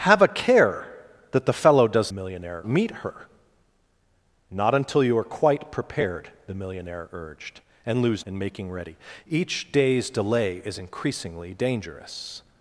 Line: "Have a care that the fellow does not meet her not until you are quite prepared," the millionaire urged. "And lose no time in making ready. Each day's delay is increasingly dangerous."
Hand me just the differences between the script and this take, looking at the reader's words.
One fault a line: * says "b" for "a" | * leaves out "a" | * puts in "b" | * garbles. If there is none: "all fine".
* says "millionaire" for "not"
* leaves out "no time"